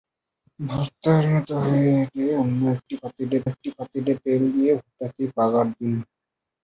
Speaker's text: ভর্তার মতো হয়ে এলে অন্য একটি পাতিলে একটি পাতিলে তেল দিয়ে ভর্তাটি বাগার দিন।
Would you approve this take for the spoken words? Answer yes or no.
yes